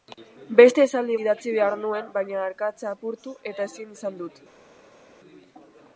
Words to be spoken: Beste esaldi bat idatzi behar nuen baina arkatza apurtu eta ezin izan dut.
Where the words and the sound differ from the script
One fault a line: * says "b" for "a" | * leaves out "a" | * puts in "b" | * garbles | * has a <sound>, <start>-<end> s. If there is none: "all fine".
* leaves out "bat"